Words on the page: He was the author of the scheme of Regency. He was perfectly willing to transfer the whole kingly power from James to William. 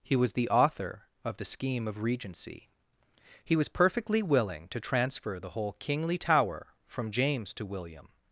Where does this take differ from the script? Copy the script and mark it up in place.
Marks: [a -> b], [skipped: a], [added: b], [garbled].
He was the author of the scheme of Regency. He was perfectly willing to transfer the whole kingly [power -> tower] from James to William.